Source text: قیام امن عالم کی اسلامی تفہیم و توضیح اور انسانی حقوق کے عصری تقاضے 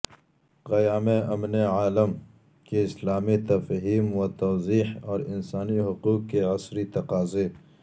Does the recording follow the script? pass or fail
pass